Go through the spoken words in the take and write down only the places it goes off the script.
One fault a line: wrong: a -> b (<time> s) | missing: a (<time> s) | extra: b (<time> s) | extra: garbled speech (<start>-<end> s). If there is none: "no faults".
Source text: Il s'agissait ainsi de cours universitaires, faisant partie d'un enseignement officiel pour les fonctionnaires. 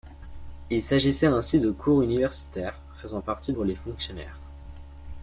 missing: d'un enseignement officiel (3.5 s)